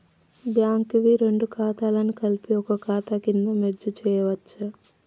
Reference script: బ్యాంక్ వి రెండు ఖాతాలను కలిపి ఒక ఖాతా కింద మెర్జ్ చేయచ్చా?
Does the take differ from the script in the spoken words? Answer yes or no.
no